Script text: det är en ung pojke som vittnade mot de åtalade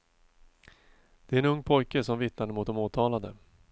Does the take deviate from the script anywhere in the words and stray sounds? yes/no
no